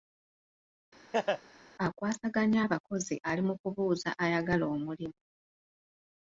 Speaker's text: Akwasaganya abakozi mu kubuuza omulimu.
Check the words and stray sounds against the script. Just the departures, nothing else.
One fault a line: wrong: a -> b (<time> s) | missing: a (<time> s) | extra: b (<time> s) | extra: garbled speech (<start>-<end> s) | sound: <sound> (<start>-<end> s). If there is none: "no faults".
sound: laugh (1.1-1.4 s)
extra: ali (3.3 s)
extra: ayagala (4.2 s)